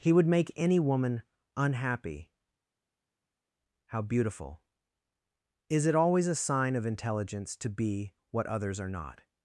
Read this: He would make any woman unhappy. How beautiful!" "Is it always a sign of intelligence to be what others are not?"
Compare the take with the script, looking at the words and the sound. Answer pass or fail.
pass